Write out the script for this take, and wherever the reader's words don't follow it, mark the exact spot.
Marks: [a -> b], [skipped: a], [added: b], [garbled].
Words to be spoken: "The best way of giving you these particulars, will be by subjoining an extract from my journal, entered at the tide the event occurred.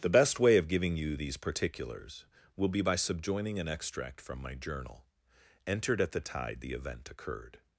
"The best way of giving you these particulars, will be by subjoining an extract from my journal, entered at the tide the event occurred.